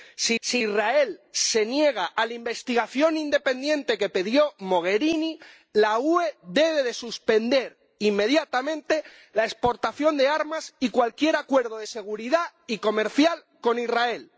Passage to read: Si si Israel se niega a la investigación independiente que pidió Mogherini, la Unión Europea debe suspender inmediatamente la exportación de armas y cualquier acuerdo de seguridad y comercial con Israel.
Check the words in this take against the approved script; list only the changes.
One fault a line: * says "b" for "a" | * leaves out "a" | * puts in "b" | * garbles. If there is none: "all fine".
all fine